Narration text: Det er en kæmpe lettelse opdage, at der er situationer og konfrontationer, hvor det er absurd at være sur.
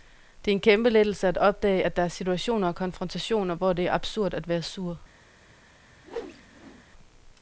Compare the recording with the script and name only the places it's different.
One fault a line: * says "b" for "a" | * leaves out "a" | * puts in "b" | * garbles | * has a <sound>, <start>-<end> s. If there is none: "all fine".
* puts in "at"
* has a whoosh, 6.0-6.8 s